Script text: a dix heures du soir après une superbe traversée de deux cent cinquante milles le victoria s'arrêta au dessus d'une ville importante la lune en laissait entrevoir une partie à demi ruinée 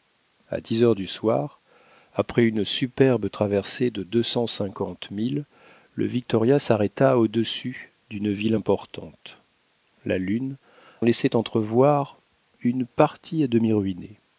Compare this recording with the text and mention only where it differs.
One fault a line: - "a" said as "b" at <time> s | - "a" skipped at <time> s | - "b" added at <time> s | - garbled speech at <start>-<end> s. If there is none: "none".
- "en" skipped at 10.5 s